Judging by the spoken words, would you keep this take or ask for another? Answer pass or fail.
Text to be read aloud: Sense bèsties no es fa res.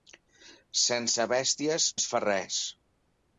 fail